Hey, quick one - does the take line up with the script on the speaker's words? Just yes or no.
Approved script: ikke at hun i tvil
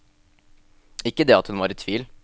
no